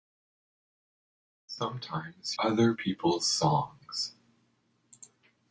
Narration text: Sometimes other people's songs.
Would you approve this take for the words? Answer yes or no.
yes